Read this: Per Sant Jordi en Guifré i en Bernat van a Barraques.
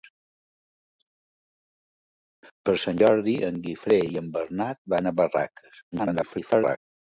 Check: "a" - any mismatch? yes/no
no